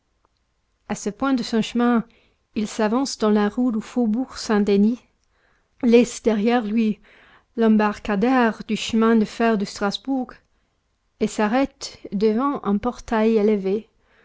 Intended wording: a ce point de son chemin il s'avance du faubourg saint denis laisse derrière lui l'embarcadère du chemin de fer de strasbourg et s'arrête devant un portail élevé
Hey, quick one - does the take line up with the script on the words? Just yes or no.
no